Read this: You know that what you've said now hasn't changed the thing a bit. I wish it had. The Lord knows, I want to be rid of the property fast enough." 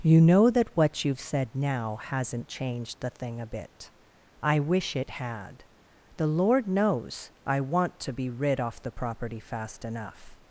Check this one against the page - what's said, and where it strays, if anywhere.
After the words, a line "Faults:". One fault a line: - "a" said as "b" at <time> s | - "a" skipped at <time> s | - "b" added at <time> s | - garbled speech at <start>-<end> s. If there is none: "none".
You know that what you've said now hasn't changed the thing a bit. I wish it had. The Lord knows, I want to be rid off the property fast enough."
Faults:
- "of" said as "off" at 8.6 s